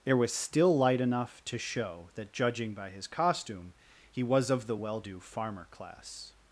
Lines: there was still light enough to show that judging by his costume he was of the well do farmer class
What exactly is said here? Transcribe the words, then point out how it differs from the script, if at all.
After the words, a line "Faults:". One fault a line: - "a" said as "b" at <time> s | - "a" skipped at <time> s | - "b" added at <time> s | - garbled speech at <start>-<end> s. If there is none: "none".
there was still light enough to show that judging by his costume he was of the well do farmer class
Faults:
none